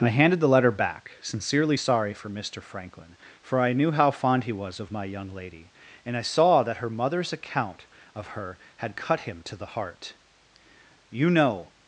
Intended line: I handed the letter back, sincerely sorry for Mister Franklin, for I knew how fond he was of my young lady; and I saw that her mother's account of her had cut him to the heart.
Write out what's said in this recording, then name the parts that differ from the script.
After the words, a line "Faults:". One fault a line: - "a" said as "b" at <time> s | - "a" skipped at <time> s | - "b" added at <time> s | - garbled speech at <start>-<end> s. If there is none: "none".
I handed the letter back, sincerely sorry for Mister Franklin, for I knew how fond he was of my young lady; and I saw that her mother's account of her had cut him to the heart. "You know
Faults:
- "You know" added at 11.1 s